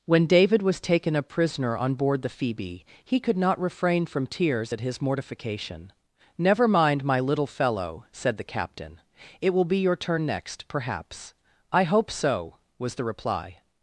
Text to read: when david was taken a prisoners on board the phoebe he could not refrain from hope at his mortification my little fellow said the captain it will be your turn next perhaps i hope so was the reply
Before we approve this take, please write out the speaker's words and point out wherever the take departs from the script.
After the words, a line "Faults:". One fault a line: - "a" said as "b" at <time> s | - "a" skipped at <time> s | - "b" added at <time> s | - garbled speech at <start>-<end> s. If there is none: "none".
when david was taken a prisoner on board the phoebe he could not refrain from tears at his mortification never mind my little fellow said the captain it will be your turn next perhaps i hope so was the reply
Faults:
- "prisoners" said as "prisoner" at 1.2 s
- "hope" said as "tears" at 4.2 s
- "never mind" added at 6.4 s